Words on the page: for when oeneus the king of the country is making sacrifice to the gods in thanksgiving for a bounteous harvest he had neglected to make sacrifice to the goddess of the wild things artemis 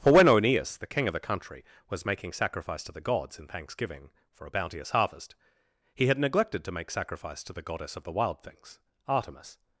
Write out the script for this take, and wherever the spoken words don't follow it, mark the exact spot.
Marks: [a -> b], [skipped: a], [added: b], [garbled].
for when oeneus the king of the country [is -> was] making sacrifice to the gods in thanksgiving for a bounteous harvest he had neglected to make sacrifice to the goddess of the wild things artemis